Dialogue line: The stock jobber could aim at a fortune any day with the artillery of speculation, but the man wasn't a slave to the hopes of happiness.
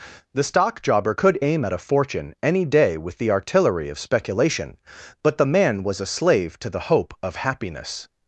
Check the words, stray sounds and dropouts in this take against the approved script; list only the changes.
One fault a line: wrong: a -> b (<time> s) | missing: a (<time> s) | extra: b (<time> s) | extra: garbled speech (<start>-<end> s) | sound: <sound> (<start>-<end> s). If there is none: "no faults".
wrong: wasn't -> was (5.8 s)
wrong: hopes -> hope (6.9 s)